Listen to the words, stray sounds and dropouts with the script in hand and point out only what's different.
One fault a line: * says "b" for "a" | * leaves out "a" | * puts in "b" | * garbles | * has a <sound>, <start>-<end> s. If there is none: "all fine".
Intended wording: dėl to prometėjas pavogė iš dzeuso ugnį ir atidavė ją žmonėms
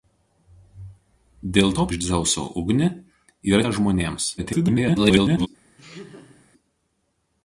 * leaves out "prometėjas pavogė"
* leaves out "atidavė"
* garbles
* has a laugh, 5.8-6.5 s